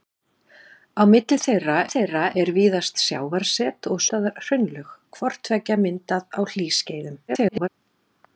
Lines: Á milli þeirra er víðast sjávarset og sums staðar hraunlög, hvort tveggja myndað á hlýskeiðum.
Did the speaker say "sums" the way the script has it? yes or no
no